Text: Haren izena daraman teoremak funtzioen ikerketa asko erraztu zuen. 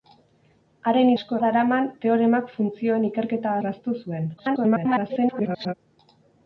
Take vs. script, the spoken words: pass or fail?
fail